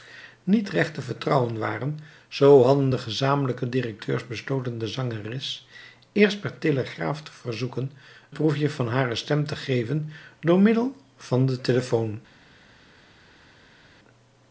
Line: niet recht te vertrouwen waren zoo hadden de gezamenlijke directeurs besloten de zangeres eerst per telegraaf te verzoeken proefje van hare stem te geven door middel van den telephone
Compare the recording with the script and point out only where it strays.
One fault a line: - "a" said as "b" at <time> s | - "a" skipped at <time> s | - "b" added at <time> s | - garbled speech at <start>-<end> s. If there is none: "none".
none